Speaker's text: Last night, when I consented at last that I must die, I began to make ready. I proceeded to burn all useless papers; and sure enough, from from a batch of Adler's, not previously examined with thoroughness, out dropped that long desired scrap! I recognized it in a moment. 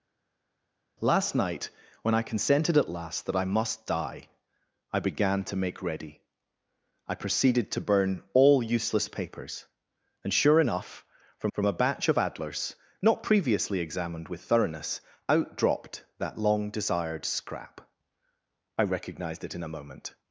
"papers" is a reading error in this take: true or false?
false